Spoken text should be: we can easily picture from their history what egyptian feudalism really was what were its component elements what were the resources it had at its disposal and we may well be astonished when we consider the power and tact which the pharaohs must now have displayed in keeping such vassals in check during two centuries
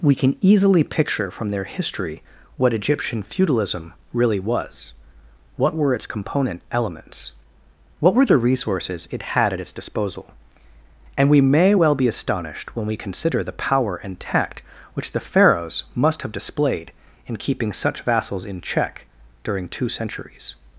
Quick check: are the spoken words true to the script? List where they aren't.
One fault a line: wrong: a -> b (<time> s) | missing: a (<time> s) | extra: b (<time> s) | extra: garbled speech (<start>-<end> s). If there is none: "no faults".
missing: now (16.2 s)